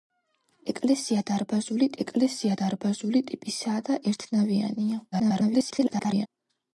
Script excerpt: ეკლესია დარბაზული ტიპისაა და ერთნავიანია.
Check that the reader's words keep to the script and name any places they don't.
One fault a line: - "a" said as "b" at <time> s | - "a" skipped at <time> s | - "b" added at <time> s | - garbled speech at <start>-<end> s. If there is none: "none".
- "ეკლესია დარბაზული" added at 2.0 s
- garbled speech at 5.1-6.3 s